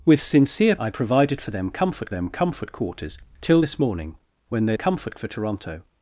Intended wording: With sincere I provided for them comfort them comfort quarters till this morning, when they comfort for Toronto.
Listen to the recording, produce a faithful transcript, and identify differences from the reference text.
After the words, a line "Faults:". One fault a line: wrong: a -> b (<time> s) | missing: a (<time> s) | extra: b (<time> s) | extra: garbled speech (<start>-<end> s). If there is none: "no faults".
With sincere I provided for them comfort them comfort quarters till this morning, when they comfort for Toronto.
Faults:
no faults